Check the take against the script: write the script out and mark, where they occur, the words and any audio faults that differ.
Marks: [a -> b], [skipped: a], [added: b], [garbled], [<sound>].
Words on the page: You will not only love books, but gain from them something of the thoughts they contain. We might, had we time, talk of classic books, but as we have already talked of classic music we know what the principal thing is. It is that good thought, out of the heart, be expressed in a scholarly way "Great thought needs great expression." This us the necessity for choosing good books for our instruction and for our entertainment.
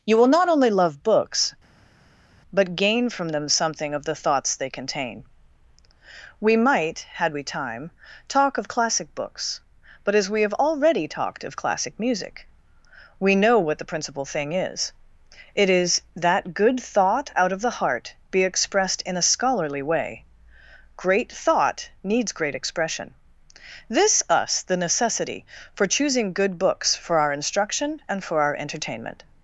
You will not only love books, but gain from them something of the thoughts they contain. We might, had we time, talk of classic books, but as we have already talked of classic music we know what the principal thing is. It is that good thought, out of the heart, be expressed in a scholarly way "Great thought needs great expression." This us the necessity for choosing good books for our instruction and for our entertainment.